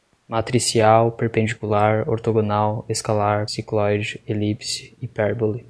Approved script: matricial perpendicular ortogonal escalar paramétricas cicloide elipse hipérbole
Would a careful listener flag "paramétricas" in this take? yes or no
yes